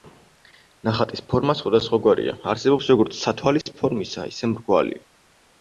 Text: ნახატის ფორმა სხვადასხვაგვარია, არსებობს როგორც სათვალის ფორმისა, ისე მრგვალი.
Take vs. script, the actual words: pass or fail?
pass